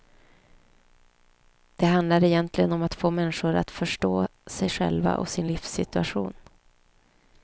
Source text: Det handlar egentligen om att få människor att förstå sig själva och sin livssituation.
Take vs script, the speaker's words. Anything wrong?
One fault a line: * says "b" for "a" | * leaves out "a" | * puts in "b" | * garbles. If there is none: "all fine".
all fine